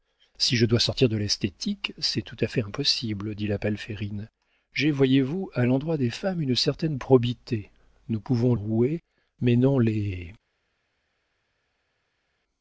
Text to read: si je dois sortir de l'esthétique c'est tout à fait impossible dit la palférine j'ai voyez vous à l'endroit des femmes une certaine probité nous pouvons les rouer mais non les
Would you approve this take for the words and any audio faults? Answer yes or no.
no